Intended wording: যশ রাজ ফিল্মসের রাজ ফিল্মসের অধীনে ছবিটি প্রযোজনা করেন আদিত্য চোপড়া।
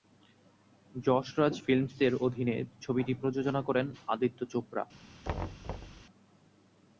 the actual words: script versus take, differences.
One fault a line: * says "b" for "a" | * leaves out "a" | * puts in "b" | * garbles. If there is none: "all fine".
* leaves out "রাজ ফিল্মসের"